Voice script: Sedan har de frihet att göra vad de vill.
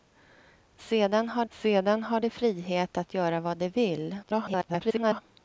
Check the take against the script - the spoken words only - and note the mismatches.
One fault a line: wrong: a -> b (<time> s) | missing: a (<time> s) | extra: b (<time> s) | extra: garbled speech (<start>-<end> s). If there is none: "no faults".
extra: sedan har (1.5 s)
extra: garbled speech (4.2-5.2 s)